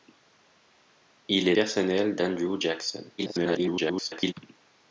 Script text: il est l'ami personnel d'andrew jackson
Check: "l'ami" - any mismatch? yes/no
yes